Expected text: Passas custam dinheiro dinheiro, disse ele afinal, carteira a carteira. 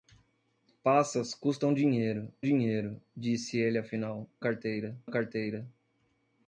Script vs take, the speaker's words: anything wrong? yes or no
no